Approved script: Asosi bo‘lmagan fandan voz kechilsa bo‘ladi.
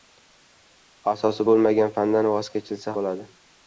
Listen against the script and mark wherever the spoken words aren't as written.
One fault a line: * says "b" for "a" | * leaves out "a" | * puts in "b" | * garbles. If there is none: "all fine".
all fine